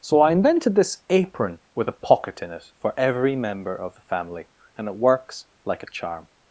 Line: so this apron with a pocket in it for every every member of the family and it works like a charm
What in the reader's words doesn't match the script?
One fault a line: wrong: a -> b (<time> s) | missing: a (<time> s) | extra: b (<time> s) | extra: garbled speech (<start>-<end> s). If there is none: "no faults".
extra: i invented (0.2 s)
missing: every (3.4 s)